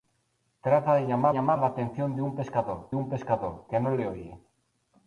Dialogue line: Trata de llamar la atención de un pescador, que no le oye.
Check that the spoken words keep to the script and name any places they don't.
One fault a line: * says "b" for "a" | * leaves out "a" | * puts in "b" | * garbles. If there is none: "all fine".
* puts in "llamar"
* puts in "un pescador"